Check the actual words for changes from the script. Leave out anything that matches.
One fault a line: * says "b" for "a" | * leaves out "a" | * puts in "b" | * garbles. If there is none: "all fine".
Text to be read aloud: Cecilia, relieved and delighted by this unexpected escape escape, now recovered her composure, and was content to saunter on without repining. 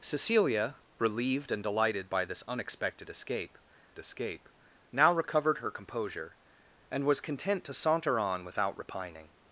all fine